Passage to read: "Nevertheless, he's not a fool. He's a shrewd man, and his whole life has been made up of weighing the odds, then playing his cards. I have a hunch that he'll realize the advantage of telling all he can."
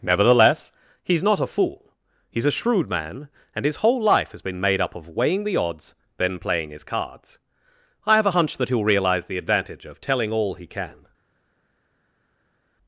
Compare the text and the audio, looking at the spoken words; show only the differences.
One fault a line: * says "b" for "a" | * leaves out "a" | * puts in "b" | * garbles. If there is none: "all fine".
all fine